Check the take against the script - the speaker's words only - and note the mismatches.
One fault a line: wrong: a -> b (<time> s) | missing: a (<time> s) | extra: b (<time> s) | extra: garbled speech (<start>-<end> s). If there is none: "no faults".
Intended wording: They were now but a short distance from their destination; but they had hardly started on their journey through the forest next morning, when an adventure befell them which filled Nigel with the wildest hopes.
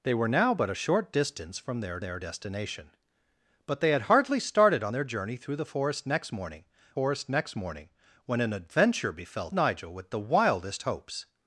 extra: their (2.0 s)
extra: forest next morning (6.9 s)
missing: them which filled (9.5 s)